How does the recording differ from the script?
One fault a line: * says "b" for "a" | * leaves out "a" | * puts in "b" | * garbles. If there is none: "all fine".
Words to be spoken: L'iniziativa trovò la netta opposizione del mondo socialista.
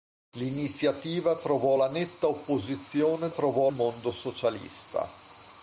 * says "trovò" for "del"